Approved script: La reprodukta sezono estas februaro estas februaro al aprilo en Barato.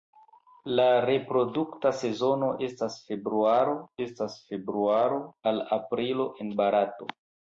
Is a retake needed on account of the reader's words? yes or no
no